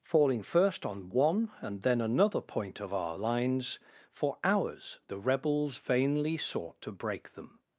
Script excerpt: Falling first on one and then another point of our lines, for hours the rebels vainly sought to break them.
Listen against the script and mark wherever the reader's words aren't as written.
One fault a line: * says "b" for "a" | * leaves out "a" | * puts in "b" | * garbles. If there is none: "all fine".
all fine